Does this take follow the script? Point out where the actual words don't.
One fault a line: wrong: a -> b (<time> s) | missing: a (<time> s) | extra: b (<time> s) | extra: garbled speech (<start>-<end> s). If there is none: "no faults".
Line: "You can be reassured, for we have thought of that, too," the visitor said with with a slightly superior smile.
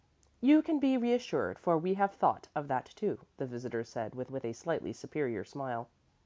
no faults